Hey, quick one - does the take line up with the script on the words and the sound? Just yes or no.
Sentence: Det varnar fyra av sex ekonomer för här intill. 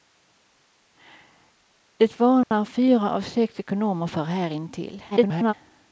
no